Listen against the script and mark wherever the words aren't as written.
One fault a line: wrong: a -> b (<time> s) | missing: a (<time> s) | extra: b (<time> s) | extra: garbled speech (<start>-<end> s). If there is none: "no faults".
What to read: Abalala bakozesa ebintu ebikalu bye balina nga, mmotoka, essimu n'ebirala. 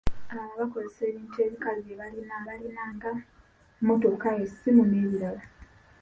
extra: balina (2.5 s)